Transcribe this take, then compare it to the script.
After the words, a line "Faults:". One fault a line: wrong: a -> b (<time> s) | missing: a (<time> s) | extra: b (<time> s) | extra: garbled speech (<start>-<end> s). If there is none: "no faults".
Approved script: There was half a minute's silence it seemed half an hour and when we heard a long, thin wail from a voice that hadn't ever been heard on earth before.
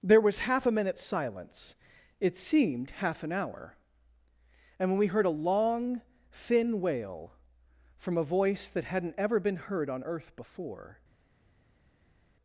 There was half a minute's silence it seemed half an hour and when we heard a long, thin wail from a voice that hadn't ever been heard on earth before.
Faults:
no faults